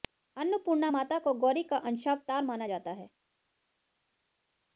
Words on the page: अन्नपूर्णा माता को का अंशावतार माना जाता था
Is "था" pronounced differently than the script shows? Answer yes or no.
yes